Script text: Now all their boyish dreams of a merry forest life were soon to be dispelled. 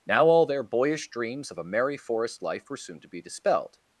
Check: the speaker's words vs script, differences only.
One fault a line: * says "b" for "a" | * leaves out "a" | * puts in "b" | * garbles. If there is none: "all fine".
all fine